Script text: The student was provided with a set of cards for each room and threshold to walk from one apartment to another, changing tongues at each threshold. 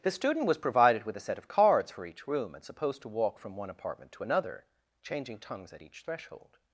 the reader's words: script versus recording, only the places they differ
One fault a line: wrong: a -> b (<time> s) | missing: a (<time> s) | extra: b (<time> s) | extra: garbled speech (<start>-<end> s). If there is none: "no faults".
wrong: threshold -> supposed (2.6 s)